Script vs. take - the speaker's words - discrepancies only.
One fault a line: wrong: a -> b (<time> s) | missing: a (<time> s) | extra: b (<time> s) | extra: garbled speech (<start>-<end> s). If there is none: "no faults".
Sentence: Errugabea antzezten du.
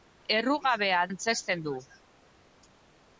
no faults